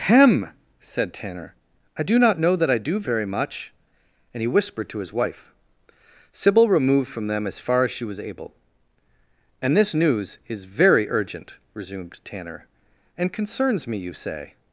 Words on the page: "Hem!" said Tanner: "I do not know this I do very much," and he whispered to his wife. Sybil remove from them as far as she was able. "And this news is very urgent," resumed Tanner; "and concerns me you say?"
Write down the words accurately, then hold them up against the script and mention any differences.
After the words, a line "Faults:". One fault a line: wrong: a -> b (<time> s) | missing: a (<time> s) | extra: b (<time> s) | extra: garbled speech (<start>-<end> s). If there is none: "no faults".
"Hem!" said Tanner: "I do not know that I do very much," and he whispered to his wife. Sybil removed from them as far as she was able. "And this news is very urgent," resumed Tanner; "and concerns me you say?"
Faults:
wrong: this -> that (2.5 s)
wrong: remove -> removed (6.7 s)